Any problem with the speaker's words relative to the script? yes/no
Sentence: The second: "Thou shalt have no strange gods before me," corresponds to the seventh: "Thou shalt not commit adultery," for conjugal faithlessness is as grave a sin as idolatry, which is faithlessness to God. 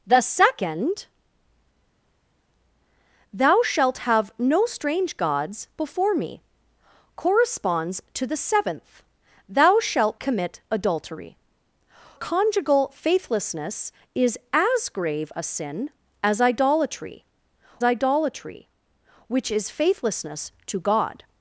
yes